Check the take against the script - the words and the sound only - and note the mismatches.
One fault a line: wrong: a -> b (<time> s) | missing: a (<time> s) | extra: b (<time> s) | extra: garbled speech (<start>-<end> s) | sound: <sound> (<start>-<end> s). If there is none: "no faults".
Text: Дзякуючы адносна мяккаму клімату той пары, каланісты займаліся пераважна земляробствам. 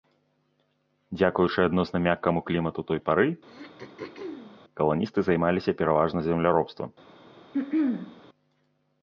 sound: throat clearing (3.4-4.6 s)
sound: throat clearing (7.5-8.2 s)